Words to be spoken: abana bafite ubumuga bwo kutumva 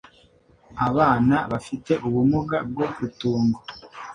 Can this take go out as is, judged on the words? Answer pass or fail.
pass